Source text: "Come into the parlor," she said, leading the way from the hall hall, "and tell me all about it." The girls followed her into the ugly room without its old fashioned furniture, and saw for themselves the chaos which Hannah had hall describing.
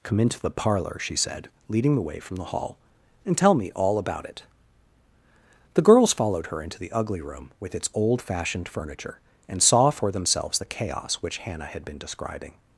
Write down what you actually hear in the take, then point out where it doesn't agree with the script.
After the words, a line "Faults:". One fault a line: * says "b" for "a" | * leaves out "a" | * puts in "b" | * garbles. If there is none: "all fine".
"Come into the parlor," she said, leading the way from the hall, "and tell me all about it." The girls followed her into the ugly room with its old fashioned furniture, and saw for themselves the chaos which Hannah had been describing.
Faults:
* leaves out "hall"
* says "with" for "without"
* says "been" for "hall"